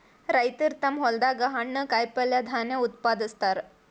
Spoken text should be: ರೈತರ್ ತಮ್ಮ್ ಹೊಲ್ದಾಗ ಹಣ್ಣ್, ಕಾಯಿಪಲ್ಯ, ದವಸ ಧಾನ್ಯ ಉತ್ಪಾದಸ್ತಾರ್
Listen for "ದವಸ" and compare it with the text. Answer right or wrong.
wrong